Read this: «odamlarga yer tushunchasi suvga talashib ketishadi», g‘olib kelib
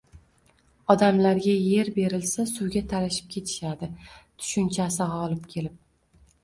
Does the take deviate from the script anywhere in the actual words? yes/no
yes